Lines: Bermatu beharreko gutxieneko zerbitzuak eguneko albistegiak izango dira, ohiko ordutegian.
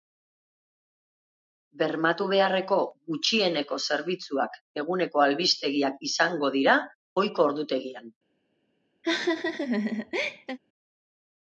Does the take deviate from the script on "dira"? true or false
false